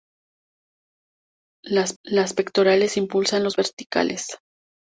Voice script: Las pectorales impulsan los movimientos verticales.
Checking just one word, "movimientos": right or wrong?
wrong